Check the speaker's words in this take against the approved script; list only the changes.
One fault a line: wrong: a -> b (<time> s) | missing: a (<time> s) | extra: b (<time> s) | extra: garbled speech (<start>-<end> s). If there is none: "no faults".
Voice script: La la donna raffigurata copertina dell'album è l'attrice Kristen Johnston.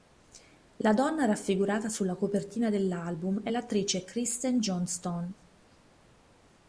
missing: la (0.9 s)
extra: sulla (1.9 s)